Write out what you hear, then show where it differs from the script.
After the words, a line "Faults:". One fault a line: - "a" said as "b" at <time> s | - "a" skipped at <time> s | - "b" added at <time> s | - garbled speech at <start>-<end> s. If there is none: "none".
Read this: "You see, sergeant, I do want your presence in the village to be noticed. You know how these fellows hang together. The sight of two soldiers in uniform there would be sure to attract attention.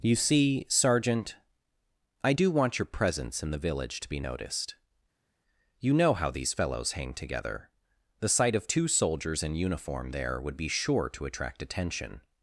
"You see, sergeant, I do want your presence in the village to be noticed. You know how these fellows hang together. The sight of two soldiers in uniform there would be sure to attract attention.
Faults:
none